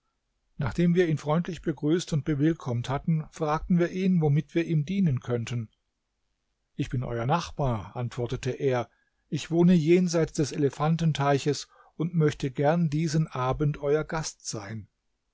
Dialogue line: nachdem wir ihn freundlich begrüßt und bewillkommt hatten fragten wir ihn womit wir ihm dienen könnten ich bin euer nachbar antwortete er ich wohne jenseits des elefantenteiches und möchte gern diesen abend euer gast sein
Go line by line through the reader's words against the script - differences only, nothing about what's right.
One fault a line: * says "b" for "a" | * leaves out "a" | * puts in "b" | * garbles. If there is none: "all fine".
all fine